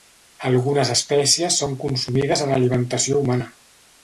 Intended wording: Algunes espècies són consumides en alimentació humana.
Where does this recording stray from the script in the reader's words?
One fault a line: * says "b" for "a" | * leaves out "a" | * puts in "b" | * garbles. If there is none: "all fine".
all fine